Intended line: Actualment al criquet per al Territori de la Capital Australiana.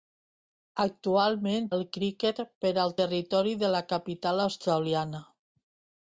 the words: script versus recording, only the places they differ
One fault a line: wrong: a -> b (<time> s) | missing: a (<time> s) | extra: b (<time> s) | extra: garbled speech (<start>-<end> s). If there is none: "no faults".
no faults